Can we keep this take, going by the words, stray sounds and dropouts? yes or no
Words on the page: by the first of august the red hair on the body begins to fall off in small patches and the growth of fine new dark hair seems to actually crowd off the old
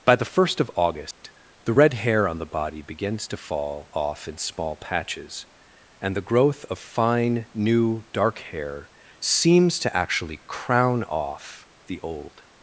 no